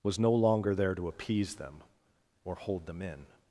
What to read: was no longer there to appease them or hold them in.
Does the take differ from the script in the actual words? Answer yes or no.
no